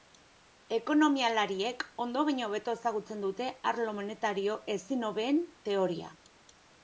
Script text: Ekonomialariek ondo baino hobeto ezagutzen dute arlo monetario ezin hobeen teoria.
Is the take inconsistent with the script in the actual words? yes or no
no